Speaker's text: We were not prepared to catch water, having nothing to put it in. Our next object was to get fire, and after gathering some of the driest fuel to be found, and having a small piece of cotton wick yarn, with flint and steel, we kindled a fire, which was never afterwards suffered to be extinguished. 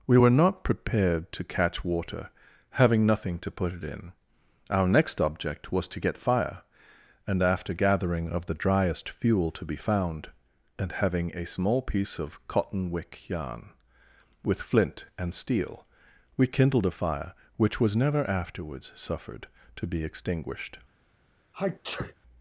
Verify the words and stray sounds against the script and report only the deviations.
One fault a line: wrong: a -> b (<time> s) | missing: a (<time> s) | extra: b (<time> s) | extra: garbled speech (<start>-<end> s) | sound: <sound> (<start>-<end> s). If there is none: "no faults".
missing: some (8.3 s)
sound: sneeze (21.5-22.1 s)